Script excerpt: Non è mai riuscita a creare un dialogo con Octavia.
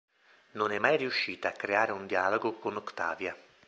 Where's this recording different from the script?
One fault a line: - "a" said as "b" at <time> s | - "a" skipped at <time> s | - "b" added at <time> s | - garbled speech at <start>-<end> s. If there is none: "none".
none